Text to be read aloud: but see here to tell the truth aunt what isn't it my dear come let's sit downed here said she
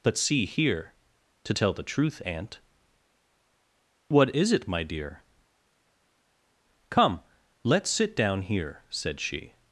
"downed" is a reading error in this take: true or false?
true